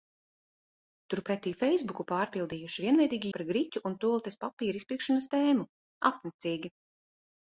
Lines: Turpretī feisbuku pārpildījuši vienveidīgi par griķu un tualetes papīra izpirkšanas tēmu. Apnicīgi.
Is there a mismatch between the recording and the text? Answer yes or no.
no